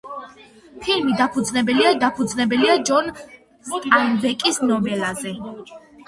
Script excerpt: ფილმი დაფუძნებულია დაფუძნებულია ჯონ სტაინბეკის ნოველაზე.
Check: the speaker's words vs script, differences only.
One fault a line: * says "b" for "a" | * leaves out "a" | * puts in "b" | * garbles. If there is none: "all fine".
all fine